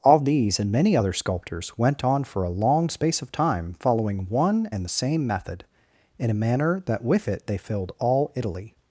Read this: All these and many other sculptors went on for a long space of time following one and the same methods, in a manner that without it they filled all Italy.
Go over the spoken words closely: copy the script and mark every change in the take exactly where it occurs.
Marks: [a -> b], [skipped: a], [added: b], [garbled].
All these and many other sculptors went on for a long space of time following one and the same [methods, -> method] in a manner that [without -> with] it they filled all Italy.